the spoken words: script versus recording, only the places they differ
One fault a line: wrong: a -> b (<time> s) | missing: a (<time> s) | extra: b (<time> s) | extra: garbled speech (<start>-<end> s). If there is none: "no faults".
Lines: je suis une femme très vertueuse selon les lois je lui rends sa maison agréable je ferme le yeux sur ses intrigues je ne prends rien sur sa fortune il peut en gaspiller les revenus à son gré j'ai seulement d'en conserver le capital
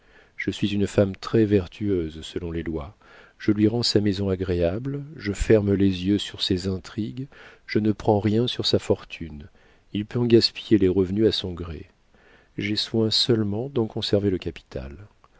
wrong: le -> les (5.7 s)
extra: soin (12.8 s)